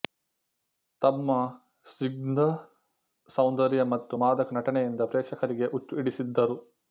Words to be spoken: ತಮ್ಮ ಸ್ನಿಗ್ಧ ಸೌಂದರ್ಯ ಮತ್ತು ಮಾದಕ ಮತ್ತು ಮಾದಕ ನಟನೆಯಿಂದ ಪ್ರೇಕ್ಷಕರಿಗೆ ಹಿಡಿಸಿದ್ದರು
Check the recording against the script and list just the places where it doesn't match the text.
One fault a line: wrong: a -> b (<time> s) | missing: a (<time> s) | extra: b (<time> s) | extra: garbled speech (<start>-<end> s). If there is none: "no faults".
missing: ಮತ್ತು ಮಾದಕ (4.6 s)
extra: ಹುಚ್ಚು (5.7 s)